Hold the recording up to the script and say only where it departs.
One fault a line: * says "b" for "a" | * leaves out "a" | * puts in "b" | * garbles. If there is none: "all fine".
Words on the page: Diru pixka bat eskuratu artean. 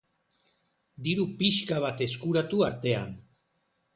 all fine